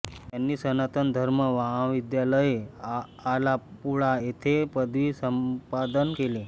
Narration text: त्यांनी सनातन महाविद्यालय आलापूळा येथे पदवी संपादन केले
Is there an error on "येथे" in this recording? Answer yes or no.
no